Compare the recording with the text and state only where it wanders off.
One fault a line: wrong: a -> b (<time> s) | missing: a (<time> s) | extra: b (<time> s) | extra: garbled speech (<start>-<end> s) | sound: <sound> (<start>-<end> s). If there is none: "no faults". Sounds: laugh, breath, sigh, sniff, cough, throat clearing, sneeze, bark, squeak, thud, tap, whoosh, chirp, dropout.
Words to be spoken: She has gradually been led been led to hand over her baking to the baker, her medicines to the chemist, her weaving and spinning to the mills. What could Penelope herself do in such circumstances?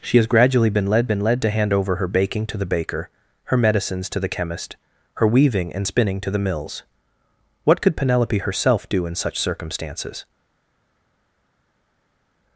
no faults